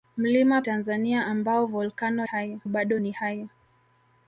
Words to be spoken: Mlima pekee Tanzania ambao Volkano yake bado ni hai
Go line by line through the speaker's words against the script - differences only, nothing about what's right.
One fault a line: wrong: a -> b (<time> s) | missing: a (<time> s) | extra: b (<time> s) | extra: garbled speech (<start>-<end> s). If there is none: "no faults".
missing: pekee (0.6 s)
wrong: yake -> hai (2.2 s)